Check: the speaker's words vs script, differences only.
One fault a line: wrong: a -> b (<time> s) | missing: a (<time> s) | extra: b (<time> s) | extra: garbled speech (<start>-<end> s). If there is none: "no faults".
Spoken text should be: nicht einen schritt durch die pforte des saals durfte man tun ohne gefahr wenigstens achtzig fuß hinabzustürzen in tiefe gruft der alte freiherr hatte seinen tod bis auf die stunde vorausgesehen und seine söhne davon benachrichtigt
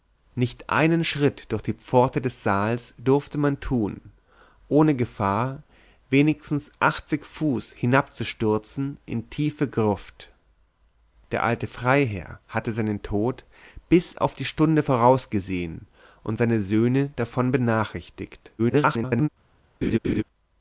extra: garbled speech (18.6-19.3 s)